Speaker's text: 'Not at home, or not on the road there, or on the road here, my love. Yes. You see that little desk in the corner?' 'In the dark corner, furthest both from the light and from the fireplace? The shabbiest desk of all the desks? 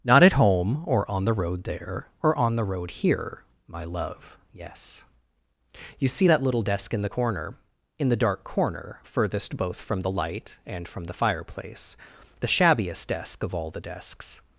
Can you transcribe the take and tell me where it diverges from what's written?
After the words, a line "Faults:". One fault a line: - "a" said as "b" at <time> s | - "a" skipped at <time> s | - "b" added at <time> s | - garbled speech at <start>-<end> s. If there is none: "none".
'Not at home, or on the road there, or on the road here, my love. Yes. You see that little desk in the corner?' 'In the dark corner, furthest both from the light and from the fireplace? The shabbiest desk of all the desks?
Faults:
- "not" skipped at 1.1 s